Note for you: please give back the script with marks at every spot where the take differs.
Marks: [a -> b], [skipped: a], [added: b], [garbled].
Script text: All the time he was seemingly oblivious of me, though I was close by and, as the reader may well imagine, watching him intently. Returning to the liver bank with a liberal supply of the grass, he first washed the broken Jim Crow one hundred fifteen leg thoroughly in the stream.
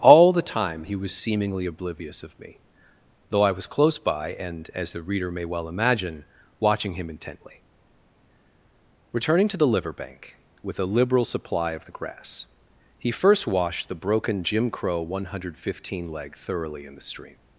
All the time he was seemingly oblivious of me, though I was close by and, as the reader may well imagine, watching him intently. Returning to the liver bank with a liberal supply of the grass, he first washed the broken Jim Crow one hundred fifteen leg thoroughly in the stream.